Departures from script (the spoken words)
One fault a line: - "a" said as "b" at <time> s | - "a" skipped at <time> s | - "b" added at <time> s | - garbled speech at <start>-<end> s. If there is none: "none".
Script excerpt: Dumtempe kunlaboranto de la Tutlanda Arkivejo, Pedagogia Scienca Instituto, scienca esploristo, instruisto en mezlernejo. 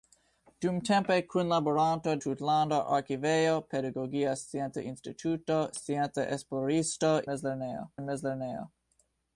- "de la" skipped at 2.1 s
- "instruisto" said as "mezlernejo" at 7.2 s